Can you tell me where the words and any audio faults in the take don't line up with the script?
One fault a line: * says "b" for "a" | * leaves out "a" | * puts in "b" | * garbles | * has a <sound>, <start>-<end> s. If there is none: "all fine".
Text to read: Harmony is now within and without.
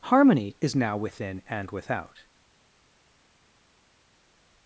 all fine